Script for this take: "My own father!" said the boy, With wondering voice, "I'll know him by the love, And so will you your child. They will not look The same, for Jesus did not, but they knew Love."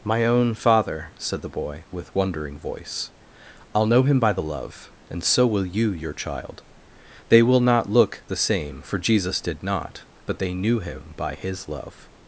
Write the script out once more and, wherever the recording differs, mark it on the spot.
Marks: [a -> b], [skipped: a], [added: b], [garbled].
"My own father!" said the boy, With wondering voice, "I'll know him by the love, And so will you your child. They will not look The same, for Jesus did not, but they knew [added: Him by His] Love."